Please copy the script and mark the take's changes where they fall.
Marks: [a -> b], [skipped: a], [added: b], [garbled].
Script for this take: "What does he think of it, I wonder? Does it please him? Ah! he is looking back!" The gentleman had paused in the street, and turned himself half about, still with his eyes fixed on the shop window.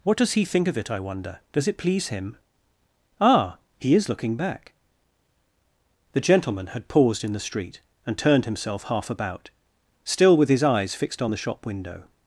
"What does he think of it, I wonder? Does it please him? Ah! he is looking back!" The gentleman had paused in the street, and turned himself half about, still with his eyes fixed on the shop window.